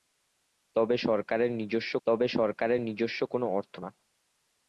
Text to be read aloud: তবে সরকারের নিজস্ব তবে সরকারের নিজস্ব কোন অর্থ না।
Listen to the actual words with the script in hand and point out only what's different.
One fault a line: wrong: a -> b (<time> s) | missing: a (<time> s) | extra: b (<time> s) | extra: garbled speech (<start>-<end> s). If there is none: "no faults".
no faults